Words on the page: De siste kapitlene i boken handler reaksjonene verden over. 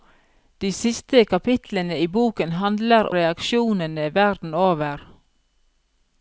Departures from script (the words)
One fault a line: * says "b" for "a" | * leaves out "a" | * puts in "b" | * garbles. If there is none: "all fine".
all fine